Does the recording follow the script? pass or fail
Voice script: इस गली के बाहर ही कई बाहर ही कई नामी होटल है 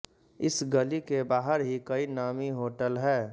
fail